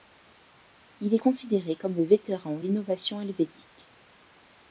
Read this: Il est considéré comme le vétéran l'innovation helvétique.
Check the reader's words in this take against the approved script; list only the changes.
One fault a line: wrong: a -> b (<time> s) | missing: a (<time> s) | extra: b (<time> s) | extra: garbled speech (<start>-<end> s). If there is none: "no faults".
no faults